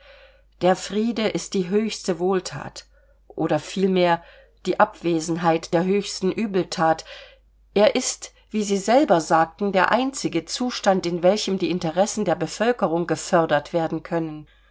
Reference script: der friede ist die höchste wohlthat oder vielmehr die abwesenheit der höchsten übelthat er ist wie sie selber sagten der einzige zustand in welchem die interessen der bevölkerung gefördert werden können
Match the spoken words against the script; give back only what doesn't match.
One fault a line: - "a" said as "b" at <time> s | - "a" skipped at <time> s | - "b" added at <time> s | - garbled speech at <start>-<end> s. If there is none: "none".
none